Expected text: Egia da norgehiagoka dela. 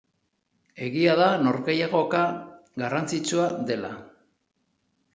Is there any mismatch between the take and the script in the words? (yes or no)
yes